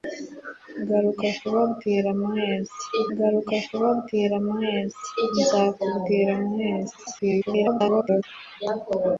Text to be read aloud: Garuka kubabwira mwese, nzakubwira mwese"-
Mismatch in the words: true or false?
true